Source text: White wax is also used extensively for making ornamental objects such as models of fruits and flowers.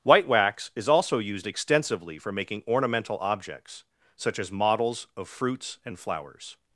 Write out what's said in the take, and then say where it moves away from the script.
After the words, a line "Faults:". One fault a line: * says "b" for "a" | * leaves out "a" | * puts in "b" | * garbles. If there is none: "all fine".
White wax is also used extensively for making ornamental objects such as models of fruits and flowers.
Faults:
all fine